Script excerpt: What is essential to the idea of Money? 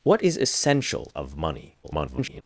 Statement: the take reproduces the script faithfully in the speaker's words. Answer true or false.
false